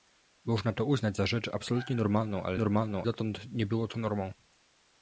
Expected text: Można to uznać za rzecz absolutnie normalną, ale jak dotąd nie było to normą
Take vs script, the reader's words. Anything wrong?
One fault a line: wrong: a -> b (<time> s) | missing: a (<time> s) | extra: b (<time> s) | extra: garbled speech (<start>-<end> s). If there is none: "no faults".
wrong: jak -> normalną (2.6 s)